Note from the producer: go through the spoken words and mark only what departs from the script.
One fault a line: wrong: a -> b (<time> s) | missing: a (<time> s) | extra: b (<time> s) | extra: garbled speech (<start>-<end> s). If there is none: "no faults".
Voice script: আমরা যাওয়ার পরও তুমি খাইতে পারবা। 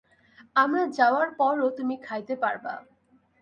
no faults